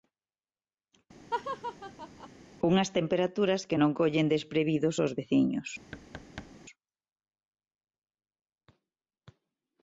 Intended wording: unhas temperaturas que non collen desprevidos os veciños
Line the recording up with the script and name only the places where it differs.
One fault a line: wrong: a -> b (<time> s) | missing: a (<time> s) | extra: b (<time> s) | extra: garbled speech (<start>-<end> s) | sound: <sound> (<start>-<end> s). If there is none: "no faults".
sound: laugh (1.3-2.3 s)
sound: thud (5.9-6.5 s)